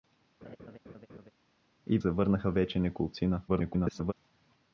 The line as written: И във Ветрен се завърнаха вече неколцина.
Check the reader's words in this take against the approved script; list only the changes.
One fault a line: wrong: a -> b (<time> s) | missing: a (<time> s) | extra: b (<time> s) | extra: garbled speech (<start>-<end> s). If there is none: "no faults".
missing: във Ветрен се (2.0 s)
extra: garbled speech (3.5-4.1 s)